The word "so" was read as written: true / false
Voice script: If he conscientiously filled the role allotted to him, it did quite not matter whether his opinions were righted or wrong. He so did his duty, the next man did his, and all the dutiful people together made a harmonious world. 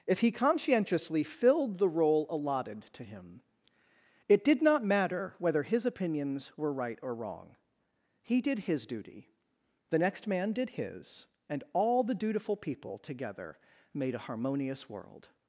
false